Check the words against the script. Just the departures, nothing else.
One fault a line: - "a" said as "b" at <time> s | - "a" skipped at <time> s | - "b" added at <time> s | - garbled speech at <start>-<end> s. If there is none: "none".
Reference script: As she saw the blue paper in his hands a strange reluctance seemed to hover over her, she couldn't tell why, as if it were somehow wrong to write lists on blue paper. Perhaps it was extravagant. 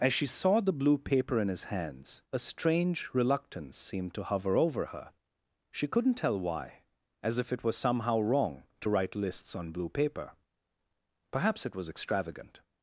- "were" said as "was" at 7.6 s